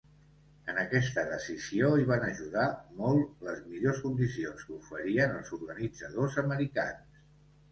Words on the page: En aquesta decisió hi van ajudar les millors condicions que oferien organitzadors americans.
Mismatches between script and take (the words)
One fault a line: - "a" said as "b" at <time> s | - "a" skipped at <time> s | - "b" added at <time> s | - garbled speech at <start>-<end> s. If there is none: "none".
- "molt" added at 3.0 s
- "els" added at 5.4 s